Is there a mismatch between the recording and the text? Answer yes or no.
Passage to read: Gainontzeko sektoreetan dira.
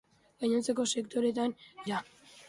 no